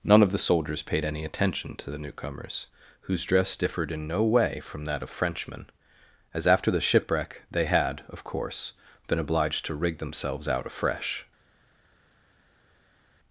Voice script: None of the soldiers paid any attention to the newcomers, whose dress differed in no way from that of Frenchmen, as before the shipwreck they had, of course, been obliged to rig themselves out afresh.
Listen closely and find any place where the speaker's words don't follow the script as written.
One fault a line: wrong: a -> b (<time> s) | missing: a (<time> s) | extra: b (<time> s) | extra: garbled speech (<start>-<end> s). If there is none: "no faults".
wrong: before -> after (6.5 s)